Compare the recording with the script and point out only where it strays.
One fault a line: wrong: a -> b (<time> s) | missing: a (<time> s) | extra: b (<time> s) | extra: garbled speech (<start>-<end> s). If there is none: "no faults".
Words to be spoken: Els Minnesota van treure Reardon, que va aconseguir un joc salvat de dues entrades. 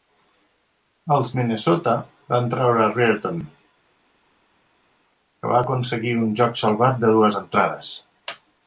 no faults